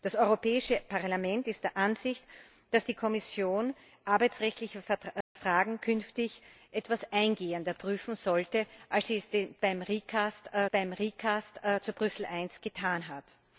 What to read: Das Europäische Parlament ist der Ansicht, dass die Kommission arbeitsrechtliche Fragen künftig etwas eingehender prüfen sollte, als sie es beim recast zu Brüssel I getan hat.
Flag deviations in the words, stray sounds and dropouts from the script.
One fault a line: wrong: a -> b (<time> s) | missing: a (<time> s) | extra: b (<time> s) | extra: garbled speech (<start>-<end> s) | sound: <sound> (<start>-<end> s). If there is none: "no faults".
sound: dropout (5.2-5.4 s)
extra: beim recast (10.7 s)